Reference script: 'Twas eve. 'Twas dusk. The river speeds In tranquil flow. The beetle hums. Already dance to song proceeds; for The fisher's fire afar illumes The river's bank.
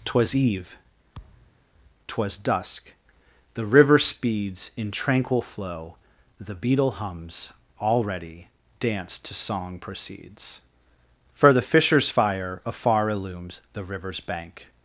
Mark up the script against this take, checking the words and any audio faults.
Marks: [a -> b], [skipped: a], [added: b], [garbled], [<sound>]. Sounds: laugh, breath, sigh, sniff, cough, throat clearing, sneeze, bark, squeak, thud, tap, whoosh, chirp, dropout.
'Twas eve. [thud] 'Twas dusk. The river speeds In tranquil flow. The beetle hums. Already dance to song proceeds; for The fisher's fire afar illumes The river's bank.